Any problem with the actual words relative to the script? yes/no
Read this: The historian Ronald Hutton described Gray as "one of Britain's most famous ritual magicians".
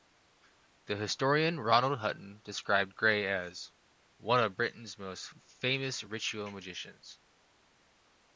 no